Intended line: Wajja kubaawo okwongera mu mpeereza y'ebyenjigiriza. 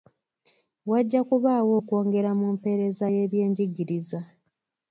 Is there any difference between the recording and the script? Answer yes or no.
no